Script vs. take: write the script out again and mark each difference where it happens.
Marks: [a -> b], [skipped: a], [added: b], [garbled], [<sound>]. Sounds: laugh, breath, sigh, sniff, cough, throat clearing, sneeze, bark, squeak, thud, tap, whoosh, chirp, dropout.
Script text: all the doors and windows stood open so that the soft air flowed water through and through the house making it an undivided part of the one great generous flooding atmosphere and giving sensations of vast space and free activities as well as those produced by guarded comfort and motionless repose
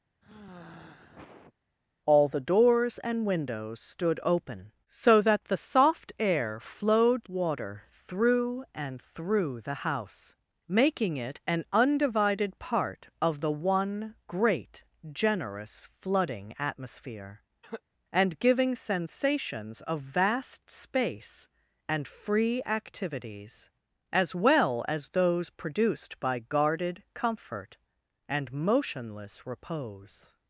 [sigh] all the doors and windows stood open so that the soft air flowed water through and through the house making it an undivided part of the one great generous flooding atmosphere [cough] and giving sensations of vast space and free activities as well as those produced by guarded comfort and motionless repose